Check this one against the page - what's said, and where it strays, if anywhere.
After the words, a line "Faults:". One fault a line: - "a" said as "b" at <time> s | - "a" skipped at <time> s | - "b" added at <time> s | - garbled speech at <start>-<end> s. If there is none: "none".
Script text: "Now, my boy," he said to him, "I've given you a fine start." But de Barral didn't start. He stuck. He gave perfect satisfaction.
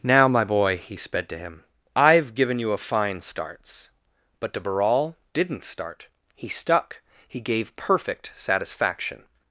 "Now, my boy," he sped to him, "I've given you a fine starts." But de Barral didn't start. He stuck. He gave perfect satisfaction.
Faults:
- "said" said as "sped" at 1.0 s
- "start" said as "starts" at 3.2 s